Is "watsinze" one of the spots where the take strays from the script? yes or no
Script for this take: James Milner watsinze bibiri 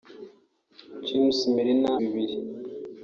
yes